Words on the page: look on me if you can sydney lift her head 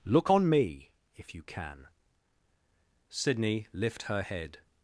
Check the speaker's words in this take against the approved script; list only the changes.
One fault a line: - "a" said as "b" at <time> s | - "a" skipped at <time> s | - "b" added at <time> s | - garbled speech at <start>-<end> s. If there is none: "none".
none